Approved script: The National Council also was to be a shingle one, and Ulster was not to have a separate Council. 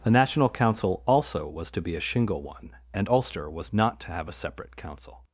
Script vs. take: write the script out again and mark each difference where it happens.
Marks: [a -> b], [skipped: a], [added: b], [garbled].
The National Council also was to be a shingle one, and Ulster was not to have a separate Council.